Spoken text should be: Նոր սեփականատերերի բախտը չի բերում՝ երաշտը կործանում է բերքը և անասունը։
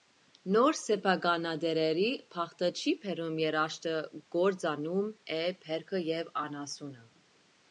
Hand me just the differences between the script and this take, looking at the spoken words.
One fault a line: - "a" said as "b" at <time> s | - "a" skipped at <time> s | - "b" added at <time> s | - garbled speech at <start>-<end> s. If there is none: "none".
none